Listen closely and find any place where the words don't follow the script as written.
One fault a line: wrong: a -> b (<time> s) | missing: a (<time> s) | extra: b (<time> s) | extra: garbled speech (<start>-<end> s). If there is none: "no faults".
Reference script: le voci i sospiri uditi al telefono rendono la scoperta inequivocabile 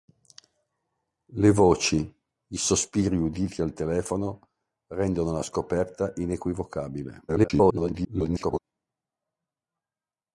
extra: garbled speech (7.3-8.6 s)